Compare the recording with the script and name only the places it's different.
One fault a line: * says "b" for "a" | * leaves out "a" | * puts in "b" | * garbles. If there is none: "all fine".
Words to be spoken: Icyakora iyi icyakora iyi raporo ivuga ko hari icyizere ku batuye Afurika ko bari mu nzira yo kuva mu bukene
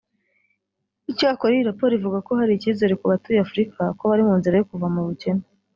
* leaves out "icyakora iyi"